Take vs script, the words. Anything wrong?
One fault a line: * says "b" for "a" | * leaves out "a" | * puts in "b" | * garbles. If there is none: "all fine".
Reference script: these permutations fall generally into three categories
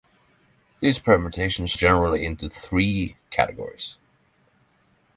* leaves out "fall"